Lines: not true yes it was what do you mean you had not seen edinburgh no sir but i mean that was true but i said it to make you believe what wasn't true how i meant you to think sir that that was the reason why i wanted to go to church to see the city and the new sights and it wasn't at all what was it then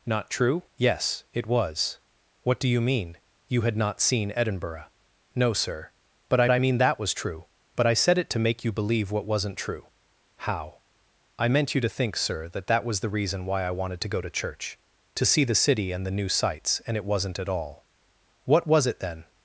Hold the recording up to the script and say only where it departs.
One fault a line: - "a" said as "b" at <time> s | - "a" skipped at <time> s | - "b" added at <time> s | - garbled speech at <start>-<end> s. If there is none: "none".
- "i" added at 6.5 s